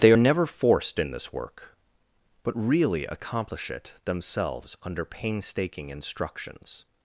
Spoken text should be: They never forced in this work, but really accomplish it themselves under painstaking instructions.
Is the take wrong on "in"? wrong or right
right